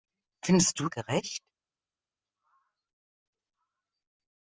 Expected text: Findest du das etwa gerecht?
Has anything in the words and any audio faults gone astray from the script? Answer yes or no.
yes